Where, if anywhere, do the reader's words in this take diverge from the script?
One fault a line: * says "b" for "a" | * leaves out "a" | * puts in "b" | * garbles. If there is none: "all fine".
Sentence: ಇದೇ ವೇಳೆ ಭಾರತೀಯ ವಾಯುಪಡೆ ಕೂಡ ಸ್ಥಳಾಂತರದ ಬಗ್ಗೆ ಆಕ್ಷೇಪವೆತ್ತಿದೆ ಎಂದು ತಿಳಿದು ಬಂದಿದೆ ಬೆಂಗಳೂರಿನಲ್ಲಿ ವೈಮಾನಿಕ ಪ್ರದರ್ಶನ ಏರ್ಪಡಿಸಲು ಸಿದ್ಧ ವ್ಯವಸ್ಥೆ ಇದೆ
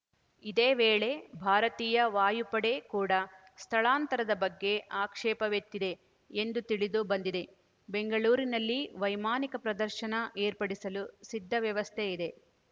all fine